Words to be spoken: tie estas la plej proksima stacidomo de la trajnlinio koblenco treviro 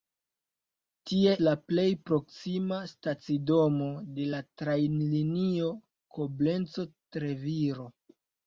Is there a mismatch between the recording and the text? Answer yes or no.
yes